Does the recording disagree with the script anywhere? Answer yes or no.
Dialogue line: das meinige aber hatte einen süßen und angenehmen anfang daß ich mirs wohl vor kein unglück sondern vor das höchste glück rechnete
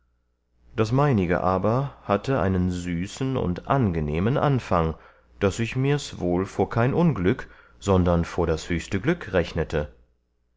no